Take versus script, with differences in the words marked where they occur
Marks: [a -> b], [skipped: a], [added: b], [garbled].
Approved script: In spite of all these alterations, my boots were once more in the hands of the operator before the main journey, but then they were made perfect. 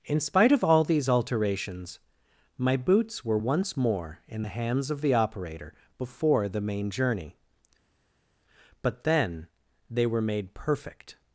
In spite of all these alterations, my boots were once more in the hands of the operator before the main journey, but then they were made perfect.